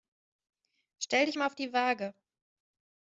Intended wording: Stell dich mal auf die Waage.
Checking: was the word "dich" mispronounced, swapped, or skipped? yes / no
no